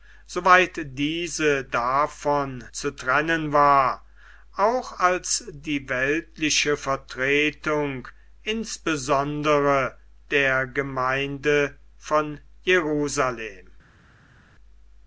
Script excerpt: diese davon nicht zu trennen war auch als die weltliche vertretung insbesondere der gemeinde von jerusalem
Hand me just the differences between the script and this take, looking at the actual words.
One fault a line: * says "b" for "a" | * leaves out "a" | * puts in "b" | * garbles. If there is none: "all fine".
* leaves out "nicht"